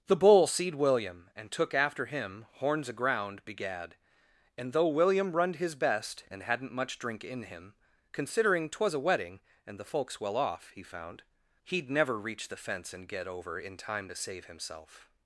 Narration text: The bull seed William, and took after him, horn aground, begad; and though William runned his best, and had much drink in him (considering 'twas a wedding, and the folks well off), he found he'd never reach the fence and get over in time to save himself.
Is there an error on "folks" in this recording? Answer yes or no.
no